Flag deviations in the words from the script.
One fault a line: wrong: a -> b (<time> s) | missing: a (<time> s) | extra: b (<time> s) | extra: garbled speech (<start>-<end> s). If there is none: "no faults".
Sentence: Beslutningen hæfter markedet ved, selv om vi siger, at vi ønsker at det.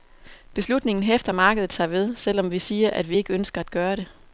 extra: sig (1.7 s)
extra: ikke (3.2 s)
extra: gøre (3.7 s)